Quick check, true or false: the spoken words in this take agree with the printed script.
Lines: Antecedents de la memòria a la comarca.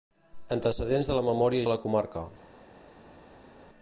true